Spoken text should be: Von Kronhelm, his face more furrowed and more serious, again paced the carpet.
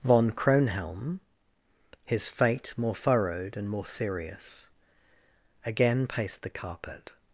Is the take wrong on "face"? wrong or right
wrong